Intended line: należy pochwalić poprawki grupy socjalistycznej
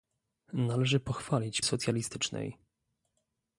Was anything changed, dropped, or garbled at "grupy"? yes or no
yes